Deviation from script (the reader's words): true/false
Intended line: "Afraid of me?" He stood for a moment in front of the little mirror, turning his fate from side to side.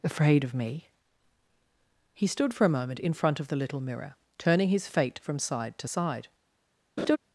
false